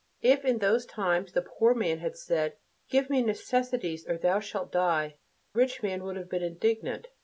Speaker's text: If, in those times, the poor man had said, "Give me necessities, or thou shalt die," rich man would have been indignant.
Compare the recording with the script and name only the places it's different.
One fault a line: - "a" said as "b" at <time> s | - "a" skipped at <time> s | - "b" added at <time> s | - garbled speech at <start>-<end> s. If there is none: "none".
none